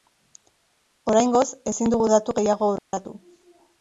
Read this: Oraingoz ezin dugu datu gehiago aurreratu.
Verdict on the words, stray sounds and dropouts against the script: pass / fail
fail